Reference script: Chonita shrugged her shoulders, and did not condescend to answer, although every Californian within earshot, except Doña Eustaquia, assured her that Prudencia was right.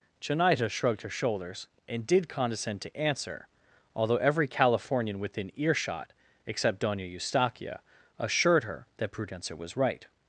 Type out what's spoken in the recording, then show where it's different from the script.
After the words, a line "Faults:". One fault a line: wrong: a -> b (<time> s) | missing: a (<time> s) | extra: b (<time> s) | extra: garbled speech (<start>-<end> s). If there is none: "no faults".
Chonita shrugged her shoulders, and did condescend to answer, although every Californian within earshot, except Doña Eustaquia, assured her that Prudencia was right.
Faults:
missing: not (2.3 s)